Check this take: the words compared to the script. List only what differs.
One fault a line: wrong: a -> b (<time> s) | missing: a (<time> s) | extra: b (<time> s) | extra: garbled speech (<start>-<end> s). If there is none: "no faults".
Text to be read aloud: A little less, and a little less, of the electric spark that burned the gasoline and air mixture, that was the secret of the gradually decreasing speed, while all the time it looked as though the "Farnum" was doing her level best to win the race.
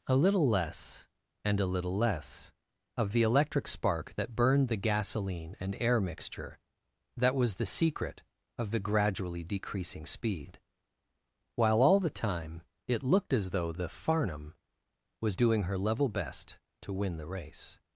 no faults